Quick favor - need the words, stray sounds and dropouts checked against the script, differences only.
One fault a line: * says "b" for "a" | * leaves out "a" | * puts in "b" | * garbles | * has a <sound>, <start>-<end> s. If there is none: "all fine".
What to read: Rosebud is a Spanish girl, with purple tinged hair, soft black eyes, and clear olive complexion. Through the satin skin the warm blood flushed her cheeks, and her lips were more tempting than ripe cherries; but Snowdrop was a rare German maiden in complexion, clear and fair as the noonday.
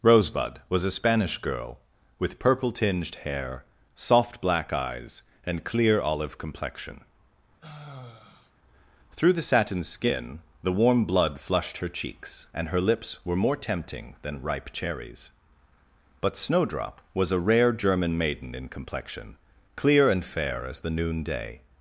* says "was" for "is"
* has a sigh, 7.6-8.5 s